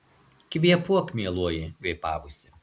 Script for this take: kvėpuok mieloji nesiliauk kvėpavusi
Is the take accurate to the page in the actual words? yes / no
no